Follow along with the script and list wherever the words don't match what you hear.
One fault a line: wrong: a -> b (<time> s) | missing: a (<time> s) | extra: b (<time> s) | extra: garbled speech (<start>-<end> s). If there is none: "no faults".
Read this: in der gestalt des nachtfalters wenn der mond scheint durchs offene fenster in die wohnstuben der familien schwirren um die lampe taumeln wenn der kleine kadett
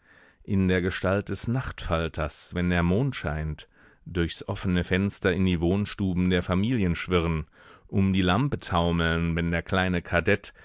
no faults